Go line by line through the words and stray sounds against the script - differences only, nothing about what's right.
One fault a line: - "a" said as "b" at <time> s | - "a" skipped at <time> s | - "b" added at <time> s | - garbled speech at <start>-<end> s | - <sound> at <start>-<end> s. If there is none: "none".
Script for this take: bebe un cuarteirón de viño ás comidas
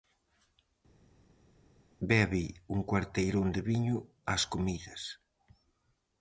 none